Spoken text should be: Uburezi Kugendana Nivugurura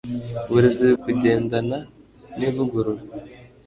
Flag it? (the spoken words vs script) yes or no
no